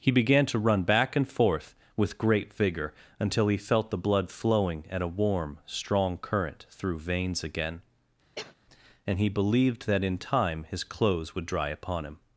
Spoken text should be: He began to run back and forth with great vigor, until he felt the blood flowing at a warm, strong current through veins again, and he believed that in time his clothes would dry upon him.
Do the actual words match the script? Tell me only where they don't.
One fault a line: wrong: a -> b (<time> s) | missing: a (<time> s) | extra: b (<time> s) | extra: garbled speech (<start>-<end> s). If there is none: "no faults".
no faults